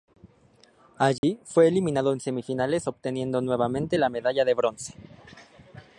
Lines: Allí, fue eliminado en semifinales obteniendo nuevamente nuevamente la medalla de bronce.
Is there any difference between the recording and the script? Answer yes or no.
yes